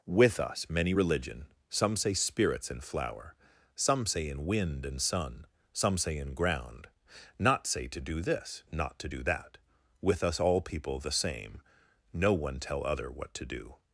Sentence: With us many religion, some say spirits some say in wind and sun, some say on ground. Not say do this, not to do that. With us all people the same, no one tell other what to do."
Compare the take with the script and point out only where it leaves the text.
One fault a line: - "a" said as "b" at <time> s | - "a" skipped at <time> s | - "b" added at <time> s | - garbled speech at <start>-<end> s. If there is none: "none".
- "in flower" added at 2.7 s
- "on" said as "in" at 6.2 s
- "to" added at 7.9 s